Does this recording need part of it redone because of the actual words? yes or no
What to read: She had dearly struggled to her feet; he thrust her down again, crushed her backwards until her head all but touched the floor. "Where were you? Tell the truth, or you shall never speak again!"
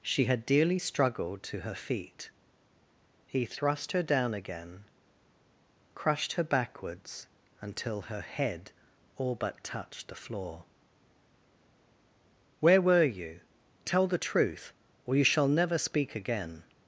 no